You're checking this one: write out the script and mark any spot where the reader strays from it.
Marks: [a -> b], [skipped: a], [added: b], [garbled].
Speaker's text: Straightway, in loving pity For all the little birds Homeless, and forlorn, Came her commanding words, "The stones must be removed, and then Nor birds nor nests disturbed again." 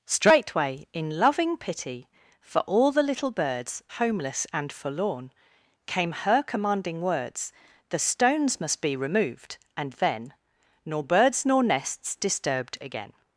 Straightway, in loving pity For all the little birds Homeless, and forlorn, Came her commanding words, "The stones must be removed, and then Nor birds nor nests disturbed again."